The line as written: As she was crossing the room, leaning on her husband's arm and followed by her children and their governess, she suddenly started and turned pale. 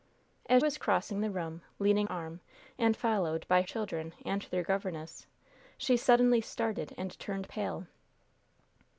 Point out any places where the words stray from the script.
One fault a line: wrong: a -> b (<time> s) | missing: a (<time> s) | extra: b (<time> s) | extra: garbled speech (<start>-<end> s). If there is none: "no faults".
missing: she (0.6 s)
missing: on her husband's (2.1 s)
missing: her (3.6 s)